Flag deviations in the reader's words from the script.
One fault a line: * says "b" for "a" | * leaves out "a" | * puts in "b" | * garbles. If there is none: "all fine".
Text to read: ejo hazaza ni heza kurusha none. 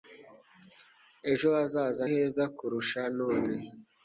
* leaves out "ni"